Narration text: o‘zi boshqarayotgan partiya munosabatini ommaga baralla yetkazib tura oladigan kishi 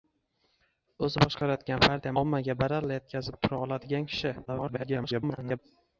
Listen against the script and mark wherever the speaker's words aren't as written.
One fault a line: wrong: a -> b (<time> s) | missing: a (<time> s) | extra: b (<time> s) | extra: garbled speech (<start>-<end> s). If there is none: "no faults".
missing: munosabatini (2.1 s)
extra: garbled speech (4.4-5.6 s)